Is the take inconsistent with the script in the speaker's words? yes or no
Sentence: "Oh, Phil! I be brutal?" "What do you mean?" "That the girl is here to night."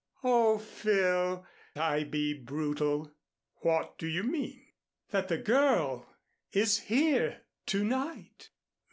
no